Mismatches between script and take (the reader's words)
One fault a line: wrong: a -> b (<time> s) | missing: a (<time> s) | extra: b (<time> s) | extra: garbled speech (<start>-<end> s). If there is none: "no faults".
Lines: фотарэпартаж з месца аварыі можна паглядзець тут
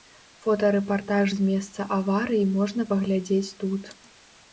no faults